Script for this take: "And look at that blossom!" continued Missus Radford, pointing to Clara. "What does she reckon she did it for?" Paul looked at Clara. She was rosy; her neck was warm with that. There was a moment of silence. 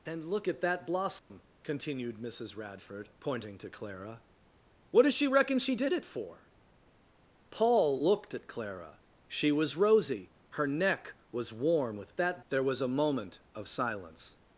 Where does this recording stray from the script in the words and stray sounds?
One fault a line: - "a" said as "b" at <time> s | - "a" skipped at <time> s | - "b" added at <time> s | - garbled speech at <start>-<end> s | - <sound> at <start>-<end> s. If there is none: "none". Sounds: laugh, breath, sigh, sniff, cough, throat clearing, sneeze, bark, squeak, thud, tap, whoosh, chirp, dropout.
- dropout at 1.2-1.3 s